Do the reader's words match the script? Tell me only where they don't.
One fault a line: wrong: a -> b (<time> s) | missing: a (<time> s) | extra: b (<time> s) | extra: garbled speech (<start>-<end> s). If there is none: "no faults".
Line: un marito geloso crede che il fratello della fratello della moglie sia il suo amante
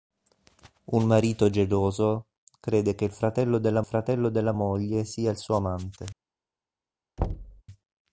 no faults